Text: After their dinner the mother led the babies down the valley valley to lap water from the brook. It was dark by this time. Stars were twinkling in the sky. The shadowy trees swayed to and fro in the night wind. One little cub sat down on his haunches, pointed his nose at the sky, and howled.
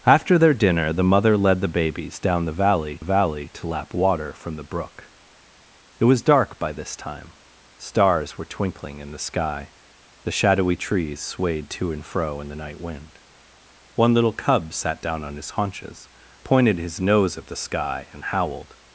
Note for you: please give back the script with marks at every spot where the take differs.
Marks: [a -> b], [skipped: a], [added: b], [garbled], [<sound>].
After their dinner the mother led the babies down the valley valley to lap water from the brook. It was dark by this time. Stars were twinkling in the sky. The shadowy trees swayed to and fro in the night wind. One little cub sat down on his haunches, pointed his nose at the sky, and howled.